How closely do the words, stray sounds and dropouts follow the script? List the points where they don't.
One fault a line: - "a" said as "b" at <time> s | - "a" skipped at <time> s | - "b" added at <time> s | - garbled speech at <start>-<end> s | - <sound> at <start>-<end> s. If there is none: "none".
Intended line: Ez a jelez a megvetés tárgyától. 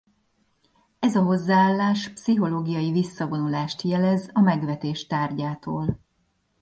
- "hozzáállás pszichológiai visszavonulást" added at 1.2 s